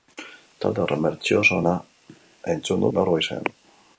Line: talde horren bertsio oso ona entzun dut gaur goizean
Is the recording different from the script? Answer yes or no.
yes